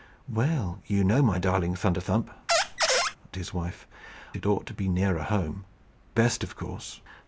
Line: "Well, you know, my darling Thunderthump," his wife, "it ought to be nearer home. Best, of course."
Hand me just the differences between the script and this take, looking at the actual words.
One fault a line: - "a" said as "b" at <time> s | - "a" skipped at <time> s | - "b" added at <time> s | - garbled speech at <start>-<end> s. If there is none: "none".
none